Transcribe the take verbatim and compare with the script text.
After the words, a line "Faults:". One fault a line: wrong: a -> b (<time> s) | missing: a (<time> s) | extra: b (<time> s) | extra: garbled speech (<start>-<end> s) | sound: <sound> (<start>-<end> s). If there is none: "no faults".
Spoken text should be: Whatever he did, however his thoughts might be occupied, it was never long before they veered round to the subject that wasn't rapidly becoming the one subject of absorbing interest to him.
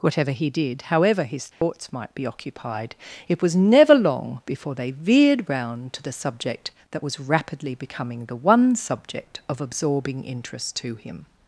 Whatever he did, however his thoughts might be occupied, it was never long before they veered round to the subject that was rapidly becoming the one subject of absorbing interest to him.
Faults:
sound: dropout (1.5-1.6 s)
wrong: wasn't -> was (7.0 s)